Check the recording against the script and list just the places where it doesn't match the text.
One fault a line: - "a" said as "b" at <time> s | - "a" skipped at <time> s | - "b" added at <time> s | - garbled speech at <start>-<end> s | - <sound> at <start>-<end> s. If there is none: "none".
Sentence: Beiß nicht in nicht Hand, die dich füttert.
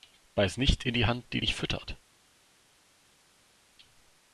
- "nicht" said as "die" at 0.9 s